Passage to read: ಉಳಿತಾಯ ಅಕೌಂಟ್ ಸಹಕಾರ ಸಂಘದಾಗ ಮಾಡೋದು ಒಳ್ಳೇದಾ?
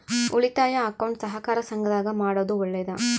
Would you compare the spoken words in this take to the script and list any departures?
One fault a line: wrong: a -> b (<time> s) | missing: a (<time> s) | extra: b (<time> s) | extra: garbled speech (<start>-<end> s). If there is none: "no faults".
no faults